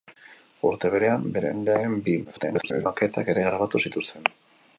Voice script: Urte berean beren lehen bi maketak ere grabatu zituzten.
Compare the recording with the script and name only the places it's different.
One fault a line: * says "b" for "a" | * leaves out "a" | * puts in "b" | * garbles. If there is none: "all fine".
* garbles